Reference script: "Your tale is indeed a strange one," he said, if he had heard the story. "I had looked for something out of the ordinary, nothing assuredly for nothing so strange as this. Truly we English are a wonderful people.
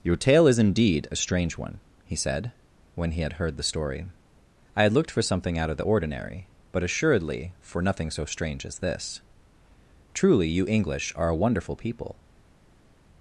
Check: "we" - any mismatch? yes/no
yes